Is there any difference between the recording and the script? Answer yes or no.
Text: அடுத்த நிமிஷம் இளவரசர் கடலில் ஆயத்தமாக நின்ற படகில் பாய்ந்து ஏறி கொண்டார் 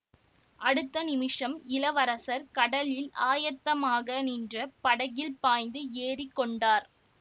no